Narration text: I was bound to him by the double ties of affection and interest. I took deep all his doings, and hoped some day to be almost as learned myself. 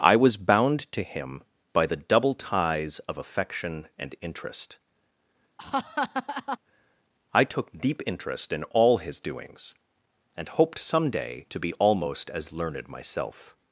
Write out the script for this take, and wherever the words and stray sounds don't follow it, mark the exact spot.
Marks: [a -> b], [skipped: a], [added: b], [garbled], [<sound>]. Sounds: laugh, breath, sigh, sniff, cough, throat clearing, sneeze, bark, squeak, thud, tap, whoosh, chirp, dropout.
I was bound to him by the double ties of affection and interest. [laugh] I took deep [added: interest in] all his doings, and hoped some day to be almost as learned myself.